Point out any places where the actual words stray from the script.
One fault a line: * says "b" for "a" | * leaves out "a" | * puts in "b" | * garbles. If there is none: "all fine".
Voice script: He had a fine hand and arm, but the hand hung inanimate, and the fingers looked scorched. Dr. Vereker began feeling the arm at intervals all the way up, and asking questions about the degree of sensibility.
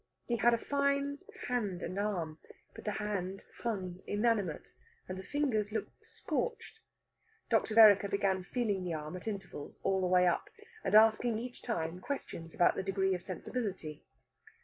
* puts in "each time"